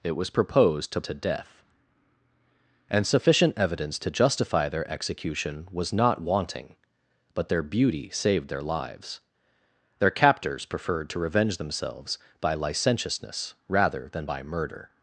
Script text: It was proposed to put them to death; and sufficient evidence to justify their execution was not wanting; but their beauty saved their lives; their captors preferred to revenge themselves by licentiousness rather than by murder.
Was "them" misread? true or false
true